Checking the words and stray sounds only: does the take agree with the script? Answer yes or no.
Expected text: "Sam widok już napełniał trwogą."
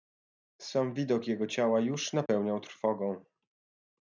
no